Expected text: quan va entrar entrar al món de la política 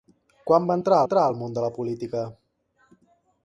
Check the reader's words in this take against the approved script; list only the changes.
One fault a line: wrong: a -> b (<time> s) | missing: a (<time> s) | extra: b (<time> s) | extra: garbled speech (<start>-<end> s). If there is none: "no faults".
no faults